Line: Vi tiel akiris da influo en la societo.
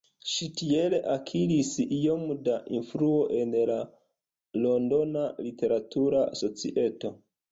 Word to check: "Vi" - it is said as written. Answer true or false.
false